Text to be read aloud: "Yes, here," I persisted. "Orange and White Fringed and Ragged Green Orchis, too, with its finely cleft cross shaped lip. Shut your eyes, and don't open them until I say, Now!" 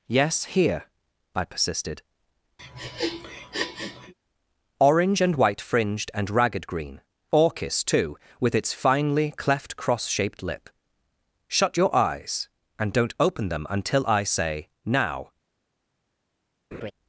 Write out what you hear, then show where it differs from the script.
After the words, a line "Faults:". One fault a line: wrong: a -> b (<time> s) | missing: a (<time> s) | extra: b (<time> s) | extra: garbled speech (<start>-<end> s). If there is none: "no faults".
"Yes, here," I persisted. "Orange and White Fringed and Ragged Green Orchis, too, with its finely cleft cross shaped lip. Shut your eyes, and don't open them until I say, Now!"
Faults:
no faults